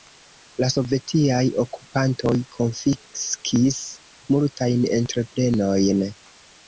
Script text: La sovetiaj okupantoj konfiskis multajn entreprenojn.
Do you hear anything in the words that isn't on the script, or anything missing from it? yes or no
no